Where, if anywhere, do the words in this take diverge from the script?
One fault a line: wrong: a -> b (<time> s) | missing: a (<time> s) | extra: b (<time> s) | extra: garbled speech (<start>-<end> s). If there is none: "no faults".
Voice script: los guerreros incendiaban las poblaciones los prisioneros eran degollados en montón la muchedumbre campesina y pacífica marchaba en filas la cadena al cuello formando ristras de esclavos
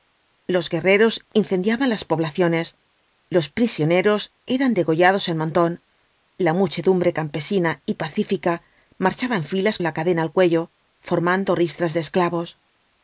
no faults